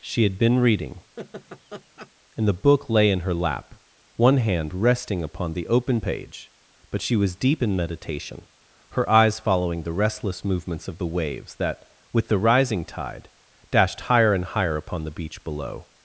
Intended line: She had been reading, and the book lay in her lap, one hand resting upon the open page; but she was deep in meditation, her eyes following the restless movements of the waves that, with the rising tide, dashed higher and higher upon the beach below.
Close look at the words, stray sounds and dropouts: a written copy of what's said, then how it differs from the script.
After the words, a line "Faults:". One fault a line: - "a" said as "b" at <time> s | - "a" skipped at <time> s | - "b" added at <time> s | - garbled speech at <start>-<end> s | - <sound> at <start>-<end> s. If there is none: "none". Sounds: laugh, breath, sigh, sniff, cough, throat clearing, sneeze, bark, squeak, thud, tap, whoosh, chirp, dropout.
She had been reading, and the book lay in her lap, one hand resting upon the open page; but she was deep in meditation, her eyes following the restless movements of the waves that, with the rising tide, dashed higher and higher upon the beach below.
Faults:
- laugh at 1.2-2.1 s